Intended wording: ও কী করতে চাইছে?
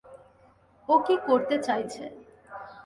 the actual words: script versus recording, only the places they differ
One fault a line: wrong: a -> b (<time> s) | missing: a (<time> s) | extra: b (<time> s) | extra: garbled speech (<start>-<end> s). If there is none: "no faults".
no faults